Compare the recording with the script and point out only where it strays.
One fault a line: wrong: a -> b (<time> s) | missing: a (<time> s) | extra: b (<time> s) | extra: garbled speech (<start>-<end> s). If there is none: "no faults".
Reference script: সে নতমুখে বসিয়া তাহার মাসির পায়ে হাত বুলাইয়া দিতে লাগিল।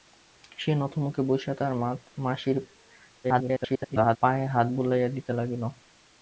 extra: garbled speech (3.2-4.2 s)